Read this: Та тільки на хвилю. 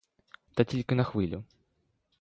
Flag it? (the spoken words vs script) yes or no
no